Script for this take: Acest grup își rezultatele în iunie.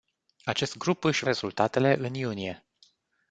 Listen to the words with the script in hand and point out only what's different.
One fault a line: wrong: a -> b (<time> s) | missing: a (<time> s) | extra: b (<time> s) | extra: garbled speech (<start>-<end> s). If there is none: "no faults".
no faults